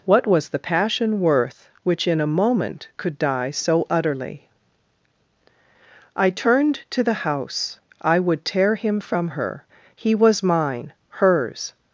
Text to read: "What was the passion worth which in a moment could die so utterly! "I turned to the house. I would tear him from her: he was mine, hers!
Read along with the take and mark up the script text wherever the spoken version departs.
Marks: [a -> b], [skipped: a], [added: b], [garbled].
"What was the passion worth which in a moment could die so utterly! "I turned to the house. I would tear him from her: he was mine, hers!